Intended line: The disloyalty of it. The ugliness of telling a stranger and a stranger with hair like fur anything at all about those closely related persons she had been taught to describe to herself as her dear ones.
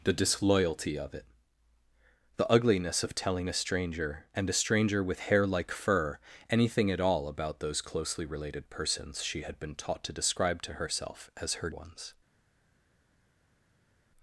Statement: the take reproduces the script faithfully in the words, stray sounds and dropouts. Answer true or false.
false